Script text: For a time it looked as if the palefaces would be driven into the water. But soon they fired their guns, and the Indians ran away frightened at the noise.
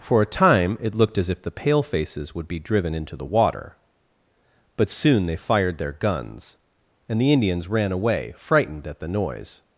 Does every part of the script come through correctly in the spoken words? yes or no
yes